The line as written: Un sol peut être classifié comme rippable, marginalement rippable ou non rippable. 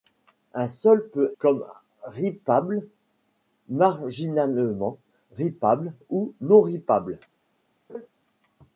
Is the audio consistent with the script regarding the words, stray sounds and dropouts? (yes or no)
no